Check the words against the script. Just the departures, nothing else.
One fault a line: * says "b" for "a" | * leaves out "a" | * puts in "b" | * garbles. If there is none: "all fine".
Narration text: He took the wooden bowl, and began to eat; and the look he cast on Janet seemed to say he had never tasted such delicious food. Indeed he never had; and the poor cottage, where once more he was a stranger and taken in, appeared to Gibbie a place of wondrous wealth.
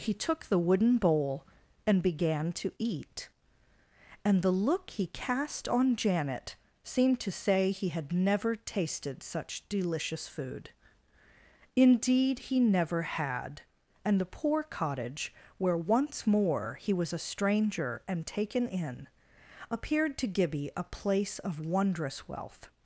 all fine